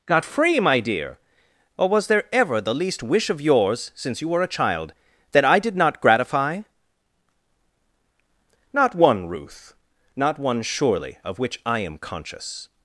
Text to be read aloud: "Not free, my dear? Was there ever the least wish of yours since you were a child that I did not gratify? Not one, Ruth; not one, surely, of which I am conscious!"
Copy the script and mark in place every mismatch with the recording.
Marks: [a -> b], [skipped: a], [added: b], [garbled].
["Not -> Got] free, my dear? [added: or] Was there ever the least wish of yours since you were a child that I did not gratify? Not one, Ruth; not one, surely, of which I am conscious!"